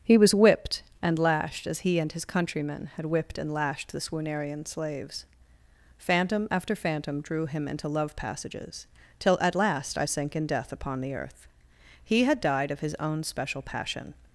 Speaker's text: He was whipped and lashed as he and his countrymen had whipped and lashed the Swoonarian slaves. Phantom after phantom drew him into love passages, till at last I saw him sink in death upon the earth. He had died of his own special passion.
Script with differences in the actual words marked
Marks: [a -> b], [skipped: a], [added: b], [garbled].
He was whipped and lashed as he and his countrymen had whipped and lashed the Swoonarian slaves. Phantom after phantom drew him into love passages, till at last I [skipped: saw him] sink in death upon the earth. He had died of his own special passion.